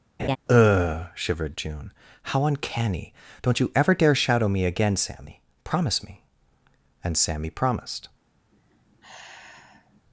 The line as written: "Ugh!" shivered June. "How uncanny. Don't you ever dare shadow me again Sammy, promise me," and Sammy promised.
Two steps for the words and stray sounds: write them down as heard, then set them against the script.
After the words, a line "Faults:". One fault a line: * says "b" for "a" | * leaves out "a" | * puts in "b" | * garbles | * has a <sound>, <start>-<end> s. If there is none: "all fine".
"Ugh!" shivered June. "How uncanny. Don't you ever dare shadow me again Sammy, promise me," and Sammy promised.
Faults:
* has a laugh, 0.2-0.4 s
* has a sigh, 8.5-10.0 s